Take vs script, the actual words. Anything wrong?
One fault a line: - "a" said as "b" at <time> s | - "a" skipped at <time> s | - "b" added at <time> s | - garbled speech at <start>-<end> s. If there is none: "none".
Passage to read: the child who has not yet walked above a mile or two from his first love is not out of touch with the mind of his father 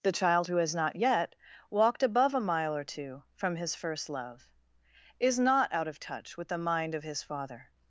none